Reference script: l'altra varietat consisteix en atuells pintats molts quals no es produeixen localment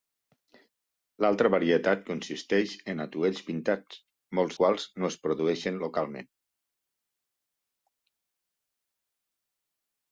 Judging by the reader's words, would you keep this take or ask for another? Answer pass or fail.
pass